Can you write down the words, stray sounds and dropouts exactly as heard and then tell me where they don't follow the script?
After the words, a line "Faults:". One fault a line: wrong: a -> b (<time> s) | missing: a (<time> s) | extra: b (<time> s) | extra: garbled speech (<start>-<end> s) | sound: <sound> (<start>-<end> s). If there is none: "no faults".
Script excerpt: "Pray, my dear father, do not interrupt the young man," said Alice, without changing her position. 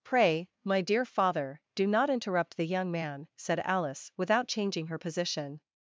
"Pray, my dear father, do not interrupt the young man," said Alice, without changing her position.
Faults:
no faults